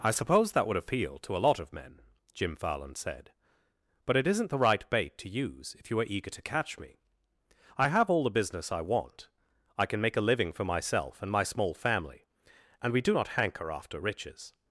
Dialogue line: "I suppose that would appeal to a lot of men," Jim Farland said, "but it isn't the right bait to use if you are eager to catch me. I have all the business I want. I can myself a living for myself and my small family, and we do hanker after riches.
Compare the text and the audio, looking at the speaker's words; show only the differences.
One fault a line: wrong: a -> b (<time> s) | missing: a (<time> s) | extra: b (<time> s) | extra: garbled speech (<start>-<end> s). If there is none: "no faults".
wrong: myself -> make (10.0 s)
extra: not (13.1 s)